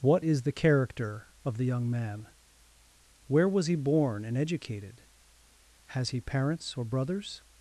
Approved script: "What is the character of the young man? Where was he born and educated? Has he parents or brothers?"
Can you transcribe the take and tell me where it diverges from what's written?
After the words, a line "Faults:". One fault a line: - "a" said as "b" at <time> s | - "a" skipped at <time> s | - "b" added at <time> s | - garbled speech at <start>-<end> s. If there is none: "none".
"What is the character of the young man? Where was he born and educated? Has he parents or brothers?"
Faults:
none